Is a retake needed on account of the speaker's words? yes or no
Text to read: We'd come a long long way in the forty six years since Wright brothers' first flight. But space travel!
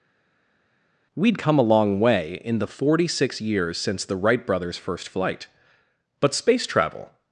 yes